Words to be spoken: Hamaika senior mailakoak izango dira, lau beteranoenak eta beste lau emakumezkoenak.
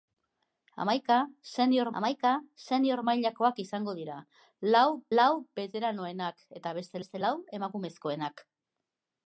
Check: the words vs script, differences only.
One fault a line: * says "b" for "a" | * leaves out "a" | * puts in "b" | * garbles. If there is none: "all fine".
* puts in "hamaika senior"
* puts in "lau"
* puts in "beste"